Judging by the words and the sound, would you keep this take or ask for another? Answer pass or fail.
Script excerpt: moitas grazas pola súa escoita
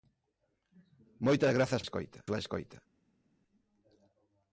fail